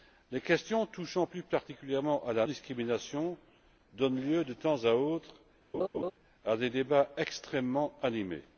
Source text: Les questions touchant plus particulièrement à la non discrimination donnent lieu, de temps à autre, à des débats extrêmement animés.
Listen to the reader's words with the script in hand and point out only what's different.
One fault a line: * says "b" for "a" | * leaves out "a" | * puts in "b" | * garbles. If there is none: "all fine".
* leaves out "non"